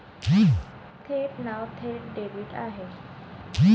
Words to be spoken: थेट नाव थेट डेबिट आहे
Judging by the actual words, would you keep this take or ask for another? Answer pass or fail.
pass